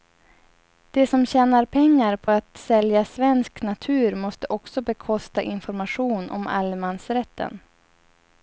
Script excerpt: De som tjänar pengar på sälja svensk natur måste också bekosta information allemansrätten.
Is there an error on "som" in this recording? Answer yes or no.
no